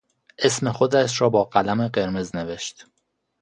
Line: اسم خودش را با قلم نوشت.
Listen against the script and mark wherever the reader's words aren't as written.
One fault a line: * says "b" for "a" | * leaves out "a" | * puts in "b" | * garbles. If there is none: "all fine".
* puts in "قرمز"